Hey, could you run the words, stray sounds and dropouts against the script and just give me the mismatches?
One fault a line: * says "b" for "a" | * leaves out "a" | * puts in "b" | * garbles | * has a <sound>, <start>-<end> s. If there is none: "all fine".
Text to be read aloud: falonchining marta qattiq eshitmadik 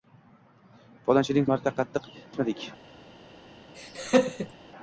* has a laugh, 3.7-4.5 s